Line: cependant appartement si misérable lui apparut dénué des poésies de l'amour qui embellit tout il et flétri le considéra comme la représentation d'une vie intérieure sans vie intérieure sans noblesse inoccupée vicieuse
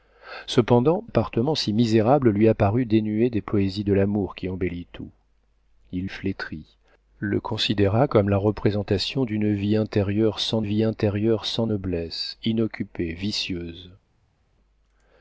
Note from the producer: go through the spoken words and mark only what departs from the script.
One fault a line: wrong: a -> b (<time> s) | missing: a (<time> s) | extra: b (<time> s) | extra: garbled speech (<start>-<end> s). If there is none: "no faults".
no faults